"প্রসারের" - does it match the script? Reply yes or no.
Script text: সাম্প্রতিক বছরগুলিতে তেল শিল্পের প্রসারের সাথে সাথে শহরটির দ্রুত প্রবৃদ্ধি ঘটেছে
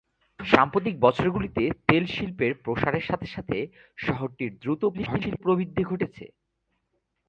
yes